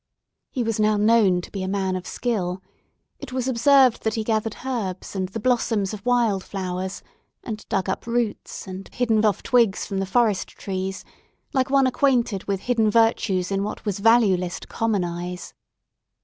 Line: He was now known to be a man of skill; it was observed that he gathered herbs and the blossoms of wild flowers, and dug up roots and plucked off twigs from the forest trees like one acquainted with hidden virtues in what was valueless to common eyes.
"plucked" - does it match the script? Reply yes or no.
no